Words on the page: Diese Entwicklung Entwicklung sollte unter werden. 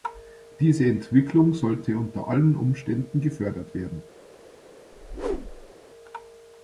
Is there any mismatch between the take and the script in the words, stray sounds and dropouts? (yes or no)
yes